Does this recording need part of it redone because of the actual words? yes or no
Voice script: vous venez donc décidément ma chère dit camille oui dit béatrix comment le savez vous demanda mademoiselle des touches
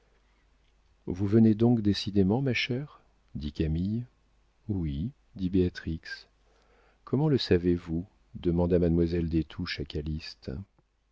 no